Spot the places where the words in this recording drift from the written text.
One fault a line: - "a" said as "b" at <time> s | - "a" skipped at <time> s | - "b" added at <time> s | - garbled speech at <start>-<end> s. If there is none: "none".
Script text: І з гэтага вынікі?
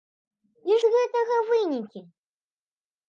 none